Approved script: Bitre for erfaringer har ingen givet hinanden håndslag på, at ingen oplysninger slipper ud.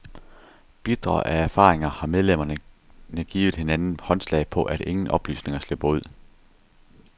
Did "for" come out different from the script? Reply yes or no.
yes